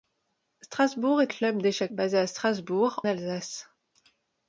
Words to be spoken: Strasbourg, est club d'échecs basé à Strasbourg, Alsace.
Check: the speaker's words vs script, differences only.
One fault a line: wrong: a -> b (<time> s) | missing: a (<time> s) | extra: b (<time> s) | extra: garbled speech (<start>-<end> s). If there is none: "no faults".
no faults